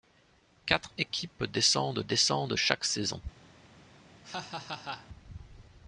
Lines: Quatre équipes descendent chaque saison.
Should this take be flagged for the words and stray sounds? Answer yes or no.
yes